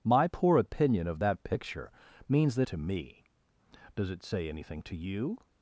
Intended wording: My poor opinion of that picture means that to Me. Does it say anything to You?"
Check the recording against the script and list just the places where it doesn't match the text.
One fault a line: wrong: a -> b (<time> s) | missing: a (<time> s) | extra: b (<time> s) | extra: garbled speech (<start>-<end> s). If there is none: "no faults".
no faults